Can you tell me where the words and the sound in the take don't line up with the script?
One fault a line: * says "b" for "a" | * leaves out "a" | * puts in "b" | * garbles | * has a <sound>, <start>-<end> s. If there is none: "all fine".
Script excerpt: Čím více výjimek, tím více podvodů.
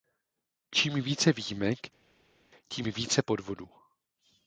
all fine